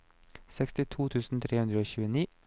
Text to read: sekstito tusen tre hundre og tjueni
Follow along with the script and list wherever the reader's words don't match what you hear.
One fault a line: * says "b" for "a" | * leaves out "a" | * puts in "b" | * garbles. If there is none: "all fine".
all fine